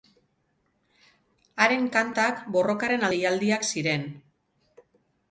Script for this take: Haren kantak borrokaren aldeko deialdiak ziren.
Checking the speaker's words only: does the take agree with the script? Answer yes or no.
no